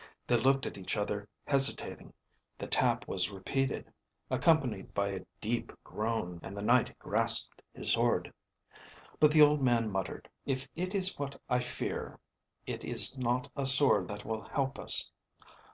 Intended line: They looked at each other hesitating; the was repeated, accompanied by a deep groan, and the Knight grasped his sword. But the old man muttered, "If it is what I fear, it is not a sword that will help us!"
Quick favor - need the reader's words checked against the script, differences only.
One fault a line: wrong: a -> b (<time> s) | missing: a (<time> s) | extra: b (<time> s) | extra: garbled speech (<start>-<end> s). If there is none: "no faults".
extra: tap (2.6 s)